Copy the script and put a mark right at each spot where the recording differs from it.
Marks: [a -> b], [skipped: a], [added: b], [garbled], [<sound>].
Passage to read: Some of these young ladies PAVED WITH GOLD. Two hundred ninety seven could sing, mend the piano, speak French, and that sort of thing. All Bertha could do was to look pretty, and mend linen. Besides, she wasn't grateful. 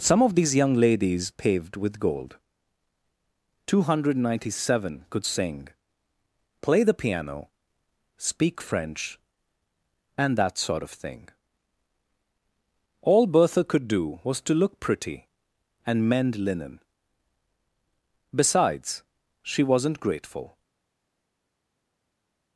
Some of these young ladies PAVED WITH GOLD. Two hundred ninety seven could sing, [mend -> play] the piano, speak French, and that sort of thing. All Bertha could do was to look pretty, and mend linen. Besides, she wasn't grateful.